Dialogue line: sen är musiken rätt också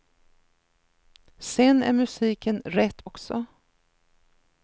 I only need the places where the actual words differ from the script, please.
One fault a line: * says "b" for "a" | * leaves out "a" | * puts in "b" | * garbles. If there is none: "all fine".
all fine